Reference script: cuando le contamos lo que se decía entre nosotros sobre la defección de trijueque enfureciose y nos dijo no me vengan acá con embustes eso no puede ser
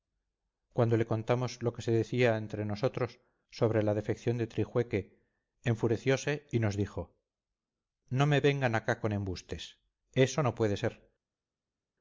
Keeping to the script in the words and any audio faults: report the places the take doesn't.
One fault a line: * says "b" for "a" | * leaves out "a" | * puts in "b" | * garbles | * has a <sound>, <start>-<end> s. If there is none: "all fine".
all fine